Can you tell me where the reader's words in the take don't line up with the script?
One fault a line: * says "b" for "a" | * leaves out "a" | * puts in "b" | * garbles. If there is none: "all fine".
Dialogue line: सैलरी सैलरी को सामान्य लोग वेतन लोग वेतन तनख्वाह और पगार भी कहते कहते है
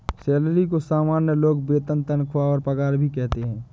* leaves out "सैलरी"
* leaves out "लोग वेतन"
* leaves out "कहते"